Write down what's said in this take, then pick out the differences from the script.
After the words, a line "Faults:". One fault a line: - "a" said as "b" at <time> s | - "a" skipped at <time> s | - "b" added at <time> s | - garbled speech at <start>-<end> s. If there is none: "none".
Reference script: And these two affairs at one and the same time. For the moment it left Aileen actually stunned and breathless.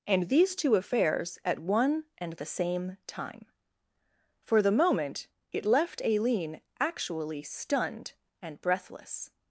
And these two affairs at one and the same time. For the moment it left Aileen actually stunned and breathless.
Faults:
none